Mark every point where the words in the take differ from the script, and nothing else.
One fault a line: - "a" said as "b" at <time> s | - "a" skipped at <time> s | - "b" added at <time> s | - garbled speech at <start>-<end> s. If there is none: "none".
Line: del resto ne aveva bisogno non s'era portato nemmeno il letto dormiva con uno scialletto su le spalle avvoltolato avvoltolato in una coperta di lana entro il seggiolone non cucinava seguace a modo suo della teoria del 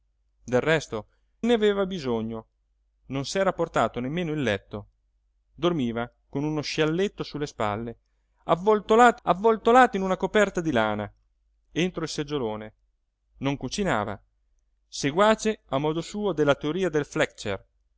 none